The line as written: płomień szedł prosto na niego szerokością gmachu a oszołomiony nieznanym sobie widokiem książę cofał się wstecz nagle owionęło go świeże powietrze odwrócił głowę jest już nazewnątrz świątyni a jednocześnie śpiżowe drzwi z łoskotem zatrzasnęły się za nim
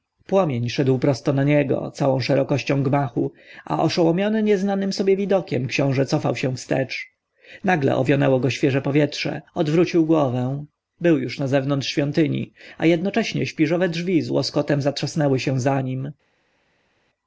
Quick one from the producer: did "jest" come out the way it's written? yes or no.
no